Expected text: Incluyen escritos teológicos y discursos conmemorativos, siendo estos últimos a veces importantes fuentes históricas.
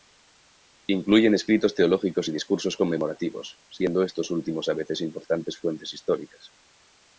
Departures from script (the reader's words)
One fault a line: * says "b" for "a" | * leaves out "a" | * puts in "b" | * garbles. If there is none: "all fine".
all fine